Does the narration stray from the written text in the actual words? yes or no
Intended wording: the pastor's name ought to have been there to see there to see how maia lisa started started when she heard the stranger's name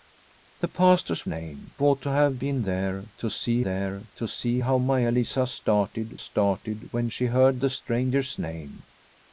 no